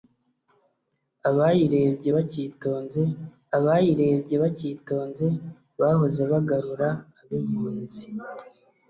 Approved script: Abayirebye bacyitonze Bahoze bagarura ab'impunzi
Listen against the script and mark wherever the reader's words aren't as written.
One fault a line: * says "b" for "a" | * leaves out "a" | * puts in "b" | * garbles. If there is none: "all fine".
* puts in "abayirebye bacyitonze"